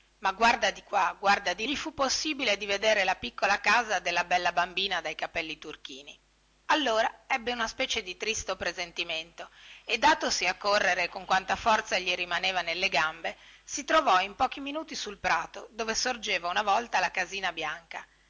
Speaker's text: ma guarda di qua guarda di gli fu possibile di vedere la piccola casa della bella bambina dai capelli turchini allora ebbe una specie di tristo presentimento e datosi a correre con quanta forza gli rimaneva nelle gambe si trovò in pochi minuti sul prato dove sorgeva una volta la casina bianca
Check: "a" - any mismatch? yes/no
no